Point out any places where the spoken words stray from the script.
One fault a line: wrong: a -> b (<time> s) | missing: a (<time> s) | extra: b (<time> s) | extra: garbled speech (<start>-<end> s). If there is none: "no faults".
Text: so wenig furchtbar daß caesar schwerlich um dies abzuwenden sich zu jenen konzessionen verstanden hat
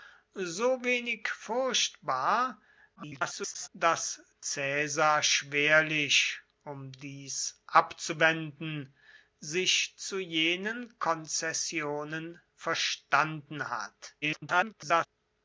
extra: garbled speech (3.0-3.7 s)
extra: garbled speech (14.2-15.1 s)